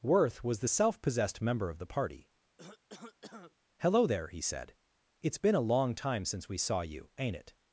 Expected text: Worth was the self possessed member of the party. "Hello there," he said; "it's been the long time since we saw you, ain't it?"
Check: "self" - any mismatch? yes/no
no